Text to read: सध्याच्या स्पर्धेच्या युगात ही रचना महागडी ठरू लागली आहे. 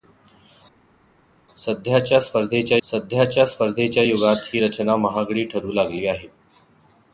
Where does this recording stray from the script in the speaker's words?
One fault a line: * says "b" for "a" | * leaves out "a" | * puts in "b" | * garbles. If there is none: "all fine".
* puts in "सध्याच्या स्पर्धेच्या"